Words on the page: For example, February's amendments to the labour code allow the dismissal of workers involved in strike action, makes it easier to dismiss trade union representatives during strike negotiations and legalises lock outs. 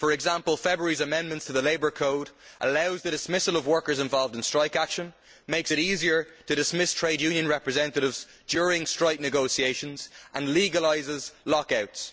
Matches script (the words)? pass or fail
pass